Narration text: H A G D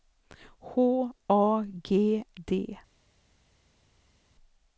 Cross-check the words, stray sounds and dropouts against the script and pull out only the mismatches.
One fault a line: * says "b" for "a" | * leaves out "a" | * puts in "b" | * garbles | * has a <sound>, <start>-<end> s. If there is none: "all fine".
all fine